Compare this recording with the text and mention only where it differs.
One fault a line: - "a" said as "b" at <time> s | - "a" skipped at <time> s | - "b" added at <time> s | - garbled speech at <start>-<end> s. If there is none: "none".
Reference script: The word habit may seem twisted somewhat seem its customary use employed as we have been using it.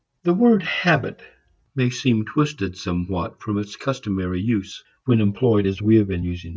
- "seem" said as "from" at 3.4 s
- "when" added at 5.0 s